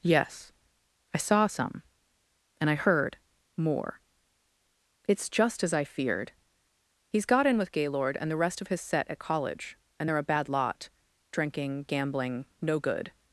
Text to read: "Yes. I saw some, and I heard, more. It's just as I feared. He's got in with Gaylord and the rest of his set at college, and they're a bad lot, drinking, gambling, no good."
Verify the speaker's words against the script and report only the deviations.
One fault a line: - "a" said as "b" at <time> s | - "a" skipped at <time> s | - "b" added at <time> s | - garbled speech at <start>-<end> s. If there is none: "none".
none